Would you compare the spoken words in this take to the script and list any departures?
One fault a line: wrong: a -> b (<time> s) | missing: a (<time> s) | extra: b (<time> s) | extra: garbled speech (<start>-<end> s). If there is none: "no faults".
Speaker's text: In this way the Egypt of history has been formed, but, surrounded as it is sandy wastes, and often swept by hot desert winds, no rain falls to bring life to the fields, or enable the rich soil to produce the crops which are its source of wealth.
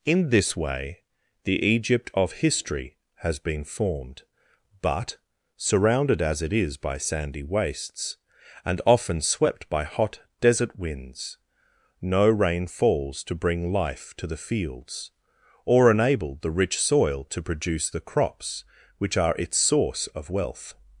extra: by (6.8 s)